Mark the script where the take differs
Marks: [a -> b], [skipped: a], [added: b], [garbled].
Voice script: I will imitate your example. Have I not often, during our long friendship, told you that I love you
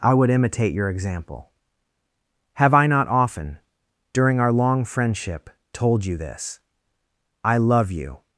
I [will -> would] imitate your example. Have I not often, during our long friendship, told you [that -> this] I love you